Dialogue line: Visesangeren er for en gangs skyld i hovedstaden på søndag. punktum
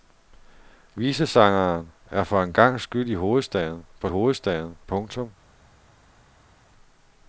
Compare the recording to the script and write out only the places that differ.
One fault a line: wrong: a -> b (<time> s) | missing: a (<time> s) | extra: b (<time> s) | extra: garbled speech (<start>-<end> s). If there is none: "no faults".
wrong: søndag -> hovedstaden (4.1 s)